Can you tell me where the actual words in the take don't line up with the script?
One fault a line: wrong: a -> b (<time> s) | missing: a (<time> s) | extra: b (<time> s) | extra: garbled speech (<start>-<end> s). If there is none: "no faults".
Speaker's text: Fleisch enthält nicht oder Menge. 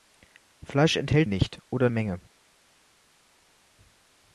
no faults